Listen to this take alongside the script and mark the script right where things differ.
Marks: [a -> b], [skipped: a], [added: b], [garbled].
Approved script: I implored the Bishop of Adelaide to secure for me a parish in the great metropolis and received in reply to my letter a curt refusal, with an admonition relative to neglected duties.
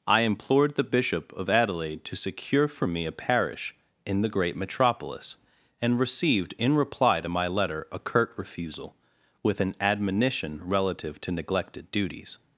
I implored the Bishop of Adelaide to secure for me a parish in the great metropolis and received in reply to my letter a curt refusal, with an admonition relative to neglected duties.